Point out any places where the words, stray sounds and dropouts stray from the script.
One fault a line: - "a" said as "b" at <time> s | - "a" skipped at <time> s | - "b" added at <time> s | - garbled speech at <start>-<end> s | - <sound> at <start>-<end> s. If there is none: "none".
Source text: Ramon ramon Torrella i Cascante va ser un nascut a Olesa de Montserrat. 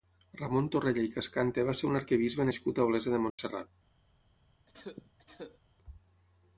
- "ramon" skipped at 0.7 s
- "arquebisbe" added at 2.0 s
- dropout at 3.3-3.4 s
- cough at 4.7-5.6 s